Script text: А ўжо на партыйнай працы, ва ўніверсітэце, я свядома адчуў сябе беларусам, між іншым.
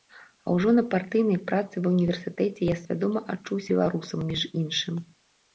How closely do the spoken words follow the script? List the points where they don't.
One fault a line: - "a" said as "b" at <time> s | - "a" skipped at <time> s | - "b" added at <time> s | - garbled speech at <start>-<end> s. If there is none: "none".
- "сябе" skipped at 3.6 s